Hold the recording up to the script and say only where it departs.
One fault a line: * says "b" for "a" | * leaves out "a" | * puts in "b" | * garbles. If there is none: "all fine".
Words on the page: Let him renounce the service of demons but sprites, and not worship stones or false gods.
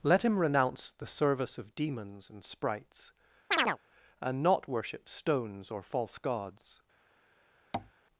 * says "and" for "but"